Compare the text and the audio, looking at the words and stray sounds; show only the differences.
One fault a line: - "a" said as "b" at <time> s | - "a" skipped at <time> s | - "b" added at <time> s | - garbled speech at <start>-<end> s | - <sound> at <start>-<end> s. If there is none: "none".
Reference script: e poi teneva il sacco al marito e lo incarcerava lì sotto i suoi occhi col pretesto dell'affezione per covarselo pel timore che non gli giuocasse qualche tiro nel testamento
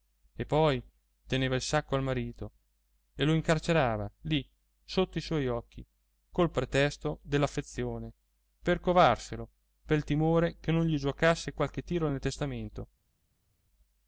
none